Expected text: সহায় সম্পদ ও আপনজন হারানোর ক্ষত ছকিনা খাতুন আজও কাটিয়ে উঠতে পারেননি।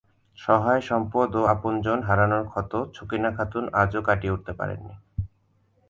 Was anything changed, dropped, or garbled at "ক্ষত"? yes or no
no